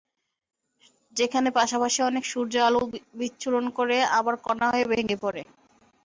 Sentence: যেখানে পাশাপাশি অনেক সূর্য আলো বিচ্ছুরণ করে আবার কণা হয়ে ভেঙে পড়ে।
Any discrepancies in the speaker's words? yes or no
no